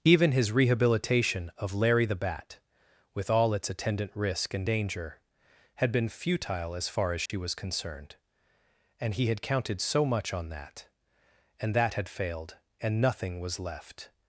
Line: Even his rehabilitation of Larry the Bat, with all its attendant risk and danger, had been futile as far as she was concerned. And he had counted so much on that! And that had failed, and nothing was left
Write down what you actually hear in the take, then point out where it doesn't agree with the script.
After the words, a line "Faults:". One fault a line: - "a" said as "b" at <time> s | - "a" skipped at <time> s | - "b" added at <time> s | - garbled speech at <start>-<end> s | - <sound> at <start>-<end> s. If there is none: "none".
Even his rehabilitation of Larry the Bat, with all its attendant risk and danger, had been futile as far as she was concerned. And he had counted so much on that! And that had failed, and nothing was left
Faults:
- dropout at 7.3-7.3 s